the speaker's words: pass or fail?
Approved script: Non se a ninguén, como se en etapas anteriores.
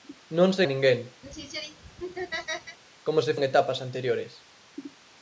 pass